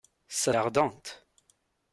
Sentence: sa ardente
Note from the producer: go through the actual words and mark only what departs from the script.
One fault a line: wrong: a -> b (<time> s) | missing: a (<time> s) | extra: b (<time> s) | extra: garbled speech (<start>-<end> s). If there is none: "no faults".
no faults